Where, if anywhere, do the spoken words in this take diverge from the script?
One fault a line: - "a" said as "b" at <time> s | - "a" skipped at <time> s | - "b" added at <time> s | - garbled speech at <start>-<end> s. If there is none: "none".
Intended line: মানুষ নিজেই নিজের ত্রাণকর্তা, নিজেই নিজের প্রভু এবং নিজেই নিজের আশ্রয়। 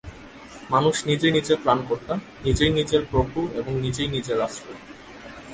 none